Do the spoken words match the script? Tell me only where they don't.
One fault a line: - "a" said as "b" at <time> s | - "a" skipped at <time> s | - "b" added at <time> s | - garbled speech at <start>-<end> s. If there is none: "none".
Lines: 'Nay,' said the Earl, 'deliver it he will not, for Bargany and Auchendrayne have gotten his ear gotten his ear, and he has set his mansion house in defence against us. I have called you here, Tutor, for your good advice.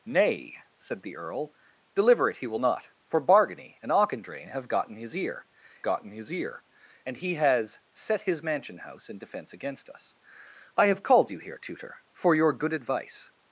none